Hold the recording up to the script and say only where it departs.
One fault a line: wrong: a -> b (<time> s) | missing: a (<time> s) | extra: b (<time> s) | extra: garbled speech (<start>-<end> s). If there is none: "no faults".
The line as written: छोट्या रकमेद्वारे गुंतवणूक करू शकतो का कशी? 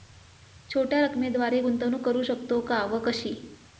extra: व (2.8 s)